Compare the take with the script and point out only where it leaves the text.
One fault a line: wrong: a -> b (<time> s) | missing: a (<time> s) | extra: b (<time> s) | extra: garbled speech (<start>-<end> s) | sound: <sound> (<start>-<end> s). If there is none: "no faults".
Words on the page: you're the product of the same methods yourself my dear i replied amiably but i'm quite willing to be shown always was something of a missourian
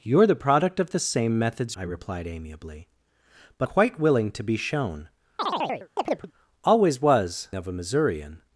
missing: yourself my dear (1.8 s)
missing: i'm (3.7 s)
sound: chirp (5.4-6.3 s)
missing: something (7.5 s)